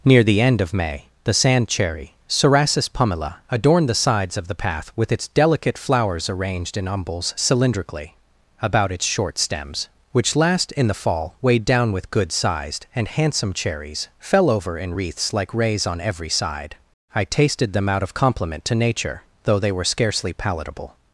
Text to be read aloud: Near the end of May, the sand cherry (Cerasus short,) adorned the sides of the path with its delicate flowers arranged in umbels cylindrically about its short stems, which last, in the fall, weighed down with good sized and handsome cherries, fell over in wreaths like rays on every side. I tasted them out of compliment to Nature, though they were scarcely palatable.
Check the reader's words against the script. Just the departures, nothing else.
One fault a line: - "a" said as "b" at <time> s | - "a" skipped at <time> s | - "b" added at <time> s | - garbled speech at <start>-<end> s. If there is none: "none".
- "short" said as "pumila" at 2.9 s